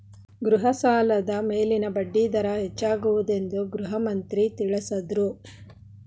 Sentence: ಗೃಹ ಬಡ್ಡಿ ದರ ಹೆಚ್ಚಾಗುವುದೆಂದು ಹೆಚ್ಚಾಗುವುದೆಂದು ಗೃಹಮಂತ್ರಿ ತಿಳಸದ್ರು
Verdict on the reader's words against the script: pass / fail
fail